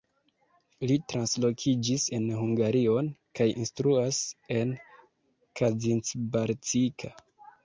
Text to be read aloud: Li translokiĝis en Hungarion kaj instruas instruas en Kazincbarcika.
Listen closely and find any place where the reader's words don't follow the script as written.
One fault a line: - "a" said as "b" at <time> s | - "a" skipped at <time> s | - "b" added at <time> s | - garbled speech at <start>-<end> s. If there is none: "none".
- "instruas" skipped at 4.2 s